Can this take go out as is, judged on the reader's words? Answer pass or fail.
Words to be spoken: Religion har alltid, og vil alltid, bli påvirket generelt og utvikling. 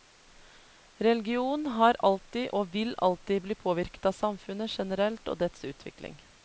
fail